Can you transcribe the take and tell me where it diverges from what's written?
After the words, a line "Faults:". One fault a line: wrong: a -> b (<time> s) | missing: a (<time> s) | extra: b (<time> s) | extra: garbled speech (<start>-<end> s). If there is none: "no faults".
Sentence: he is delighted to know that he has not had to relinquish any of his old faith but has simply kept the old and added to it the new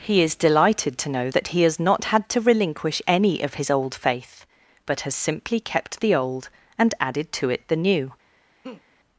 he is delighted to know that he has not had to relinquish any of his old faith but has simply kept the old and added to it the new
Faults:
no faults